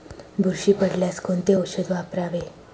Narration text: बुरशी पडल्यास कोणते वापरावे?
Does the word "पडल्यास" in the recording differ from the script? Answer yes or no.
no